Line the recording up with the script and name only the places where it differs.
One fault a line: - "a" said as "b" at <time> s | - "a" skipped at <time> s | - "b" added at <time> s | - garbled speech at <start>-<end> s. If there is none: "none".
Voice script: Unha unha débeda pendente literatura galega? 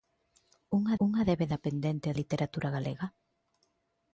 none